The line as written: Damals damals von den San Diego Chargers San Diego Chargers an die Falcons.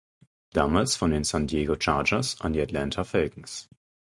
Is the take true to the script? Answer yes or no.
no